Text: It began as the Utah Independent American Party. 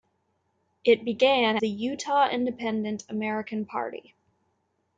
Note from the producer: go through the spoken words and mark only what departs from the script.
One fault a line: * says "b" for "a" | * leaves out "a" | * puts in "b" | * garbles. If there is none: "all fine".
* leaves out "as"